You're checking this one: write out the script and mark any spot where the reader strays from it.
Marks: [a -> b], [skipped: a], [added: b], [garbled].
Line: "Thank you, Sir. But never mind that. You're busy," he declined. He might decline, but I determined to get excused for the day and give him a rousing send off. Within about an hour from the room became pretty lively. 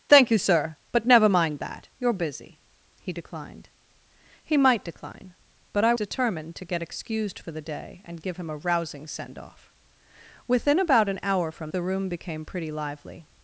"Thank you, Sir. But never mind that. You're busy," he declined. He might decline, but I determined to get excused for the day and give him a rousing send off. Within about an hour from the room became pretty lively.